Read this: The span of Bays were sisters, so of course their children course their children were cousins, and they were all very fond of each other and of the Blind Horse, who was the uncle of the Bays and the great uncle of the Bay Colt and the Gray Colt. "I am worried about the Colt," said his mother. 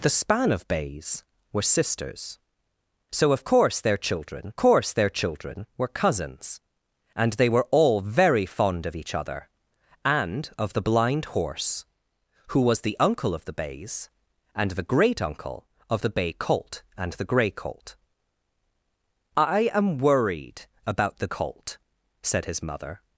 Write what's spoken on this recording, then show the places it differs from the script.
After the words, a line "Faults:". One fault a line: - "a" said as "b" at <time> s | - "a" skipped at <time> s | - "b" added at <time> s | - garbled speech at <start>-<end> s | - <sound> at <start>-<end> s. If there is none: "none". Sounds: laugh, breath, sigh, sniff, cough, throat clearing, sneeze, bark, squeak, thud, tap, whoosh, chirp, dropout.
The span of Bays were sisters, so of course their children course their children were cousins, and they were all very fond of each other and of the Blind Horse, who was the uncle of the Bays and the great uncle of the Bay Colt and the Gray Colt. "I am worried about the Colt," said his mother.
Faults:
none